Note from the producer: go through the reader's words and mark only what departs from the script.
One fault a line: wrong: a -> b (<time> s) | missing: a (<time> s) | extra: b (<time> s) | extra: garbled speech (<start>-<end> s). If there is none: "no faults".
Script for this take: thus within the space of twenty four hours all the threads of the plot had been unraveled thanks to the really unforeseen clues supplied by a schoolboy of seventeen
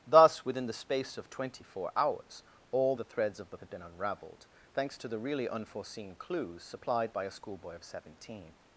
missing: plot (3.6 s)